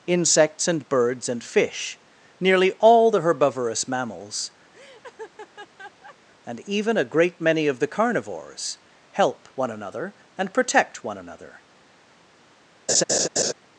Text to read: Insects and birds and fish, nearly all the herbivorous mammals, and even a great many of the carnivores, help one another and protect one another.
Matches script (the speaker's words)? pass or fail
pass